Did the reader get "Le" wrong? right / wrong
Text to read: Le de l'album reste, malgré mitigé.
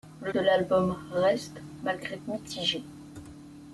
right